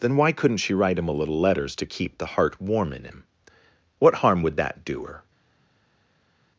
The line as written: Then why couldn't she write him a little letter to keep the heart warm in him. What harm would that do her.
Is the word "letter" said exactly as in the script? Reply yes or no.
no